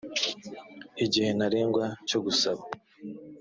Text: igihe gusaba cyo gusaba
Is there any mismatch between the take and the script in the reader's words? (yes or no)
yes